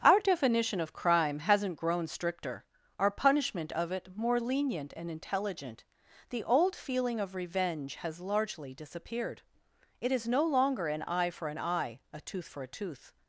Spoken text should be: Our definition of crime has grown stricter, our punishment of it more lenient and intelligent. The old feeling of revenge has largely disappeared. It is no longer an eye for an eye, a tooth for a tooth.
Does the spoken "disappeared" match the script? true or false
true